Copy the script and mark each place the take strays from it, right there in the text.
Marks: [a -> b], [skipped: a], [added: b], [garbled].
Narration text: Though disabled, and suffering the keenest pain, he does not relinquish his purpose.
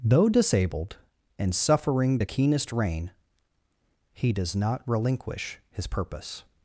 Though disabled, and suffering the keenest [pain, -> rain] he does not relinquish his purpose.